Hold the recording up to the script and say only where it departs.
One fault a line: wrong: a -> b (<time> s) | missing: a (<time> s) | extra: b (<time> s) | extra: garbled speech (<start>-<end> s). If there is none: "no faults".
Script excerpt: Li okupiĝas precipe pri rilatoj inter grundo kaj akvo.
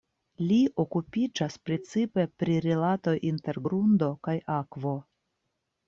no faults